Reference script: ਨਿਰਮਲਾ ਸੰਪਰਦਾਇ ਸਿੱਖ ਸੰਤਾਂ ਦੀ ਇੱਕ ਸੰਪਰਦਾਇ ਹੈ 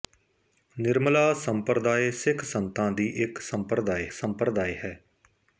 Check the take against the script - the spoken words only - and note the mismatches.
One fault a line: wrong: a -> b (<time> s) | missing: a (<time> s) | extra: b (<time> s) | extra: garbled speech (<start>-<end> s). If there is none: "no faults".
extra: ਸੰਪਰਦਾਇ (4.1 s)